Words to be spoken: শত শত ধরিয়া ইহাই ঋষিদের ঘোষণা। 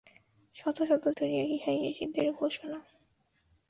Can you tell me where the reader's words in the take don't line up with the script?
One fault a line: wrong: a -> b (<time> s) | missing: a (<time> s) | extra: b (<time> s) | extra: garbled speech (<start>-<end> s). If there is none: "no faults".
no faults